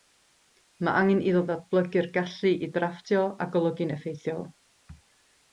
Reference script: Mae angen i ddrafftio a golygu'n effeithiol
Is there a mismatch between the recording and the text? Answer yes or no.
yes